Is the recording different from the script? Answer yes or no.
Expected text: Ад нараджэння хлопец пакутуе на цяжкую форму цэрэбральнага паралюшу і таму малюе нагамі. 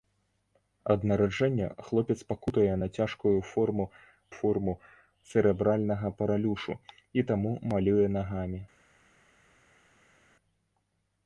yes